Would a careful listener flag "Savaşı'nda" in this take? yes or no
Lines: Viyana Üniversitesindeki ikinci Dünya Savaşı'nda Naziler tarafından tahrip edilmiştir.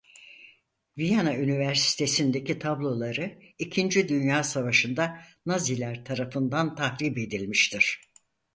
no